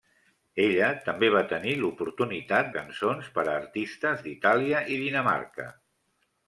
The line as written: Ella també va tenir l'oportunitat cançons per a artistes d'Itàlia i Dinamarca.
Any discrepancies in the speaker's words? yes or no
no